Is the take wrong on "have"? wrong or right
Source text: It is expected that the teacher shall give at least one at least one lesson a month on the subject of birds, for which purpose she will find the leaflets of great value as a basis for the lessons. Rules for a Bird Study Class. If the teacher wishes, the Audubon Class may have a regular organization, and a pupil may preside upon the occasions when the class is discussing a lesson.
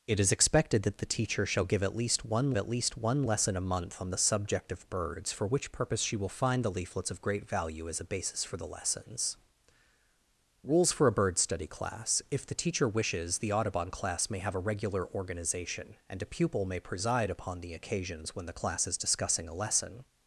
right